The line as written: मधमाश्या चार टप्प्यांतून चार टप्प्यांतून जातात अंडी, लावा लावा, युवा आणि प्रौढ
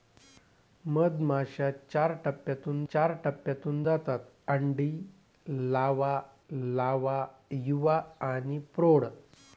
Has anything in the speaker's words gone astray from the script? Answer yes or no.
no